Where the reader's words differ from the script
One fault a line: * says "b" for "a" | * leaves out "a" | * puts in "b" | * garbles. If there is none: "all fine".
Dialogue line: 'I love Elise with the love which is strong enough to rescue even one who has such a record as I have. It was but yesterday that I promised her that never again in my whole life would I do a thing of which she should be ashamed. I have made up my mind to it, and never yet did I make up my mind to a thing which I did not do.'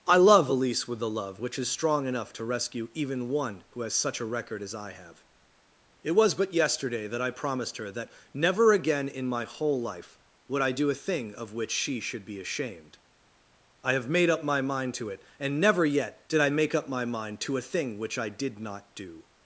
all fine